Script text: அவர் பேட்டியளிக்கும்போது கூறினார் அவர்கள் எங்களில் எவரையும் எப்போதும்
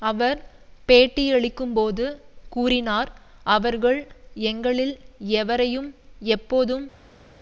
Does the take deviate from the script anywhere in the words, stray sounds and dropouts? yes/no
no